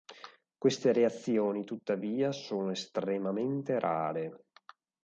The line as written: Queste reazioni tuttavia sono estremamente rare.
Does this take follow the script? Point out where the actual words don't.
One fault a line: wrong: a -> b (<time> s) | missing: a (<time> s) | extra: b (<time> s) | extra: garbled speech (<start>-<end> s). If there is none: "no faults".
no faults